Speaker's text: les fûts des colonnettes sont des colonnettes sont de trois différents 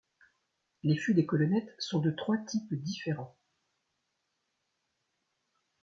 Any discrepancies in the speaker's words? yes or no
yes